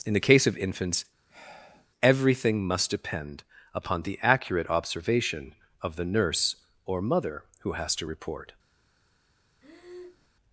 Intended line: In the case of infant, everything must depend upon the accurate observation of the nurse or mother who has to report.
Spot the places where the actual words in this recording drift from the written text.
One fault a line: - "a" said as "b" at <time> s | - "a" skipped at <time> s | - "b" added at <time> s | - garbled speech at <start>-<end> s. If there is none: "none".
- "infant" said as "infants" at 0.6 s